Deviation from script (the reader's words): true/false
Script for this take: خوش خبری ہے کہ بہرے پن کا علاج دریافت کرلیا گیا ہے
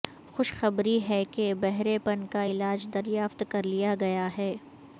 false